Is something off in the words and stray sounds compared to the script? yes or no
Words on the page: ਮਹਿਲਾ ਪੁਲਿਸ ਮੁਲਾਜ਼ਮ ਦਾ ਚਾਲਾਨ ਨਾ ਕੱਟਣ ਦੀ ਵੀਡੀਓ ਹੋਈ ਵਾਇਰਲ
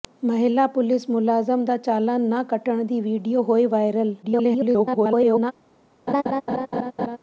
yes